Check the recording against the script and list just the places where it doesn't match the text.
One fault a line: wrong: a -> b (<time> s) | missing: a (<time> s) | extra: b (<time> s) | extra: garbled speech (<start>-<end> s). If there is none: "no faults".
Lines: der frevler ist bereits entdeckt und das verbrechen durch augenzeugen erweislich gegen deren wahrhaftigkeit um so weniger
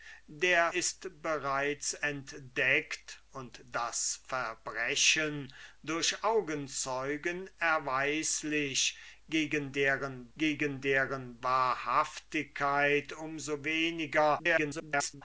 missing: frevler (0.7 s)
extra: gegen deren (10.4 s)
extra: garbled speech (14.4-15.2 s)